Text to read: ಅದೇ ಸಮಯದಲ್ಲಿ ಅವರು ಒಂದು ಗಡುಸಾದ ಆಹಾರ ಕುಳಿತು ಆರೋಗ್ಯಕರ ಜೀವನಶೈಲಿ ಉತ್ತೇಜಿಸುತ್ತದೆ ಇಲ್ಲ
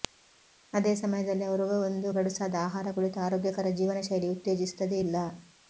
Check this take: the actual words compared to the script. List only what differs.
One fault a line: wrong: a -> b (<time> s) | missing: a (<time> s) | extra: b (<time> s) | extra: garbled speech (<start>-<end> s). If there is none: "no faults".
no faults